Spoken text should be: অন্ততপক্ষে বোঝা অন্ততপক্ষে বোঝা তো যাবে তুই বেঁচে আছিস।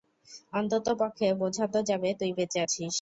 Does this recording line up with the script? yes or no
no